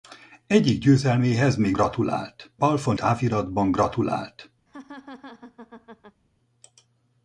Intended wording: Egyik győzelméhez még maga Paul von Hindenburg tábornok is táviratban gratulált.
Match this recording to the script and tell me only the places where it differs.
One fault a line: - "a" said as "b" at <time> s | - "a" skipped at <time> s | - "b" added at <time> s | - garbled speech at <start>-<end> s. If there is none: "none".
- "maga" said as "gratulált" at 1.7 s
- "Hindenburg tábornok is" skipped at 3.0 s